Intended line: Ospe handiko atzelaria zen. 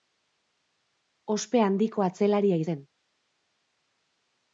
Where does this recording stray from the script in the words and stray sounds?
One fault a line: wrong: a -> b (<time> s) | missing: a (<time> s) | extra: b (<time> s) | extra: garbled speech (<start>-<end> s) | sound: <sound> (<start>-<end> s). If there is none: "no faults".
no faults